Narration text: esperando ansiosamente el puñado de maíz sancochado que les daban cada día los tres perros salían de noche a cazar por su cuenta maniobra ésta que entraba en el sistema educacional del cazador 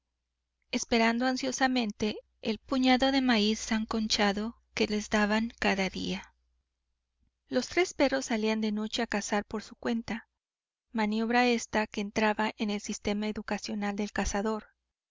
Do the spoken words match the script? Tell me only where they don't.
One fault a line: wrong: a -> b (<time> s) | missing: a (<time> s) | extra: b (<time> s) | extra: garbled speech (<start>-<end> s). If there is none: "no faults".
no faults